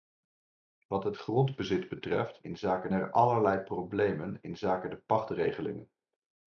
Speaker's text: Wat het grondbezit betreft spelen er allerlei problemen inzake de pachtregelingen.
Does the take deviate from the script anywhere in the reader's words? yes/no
yes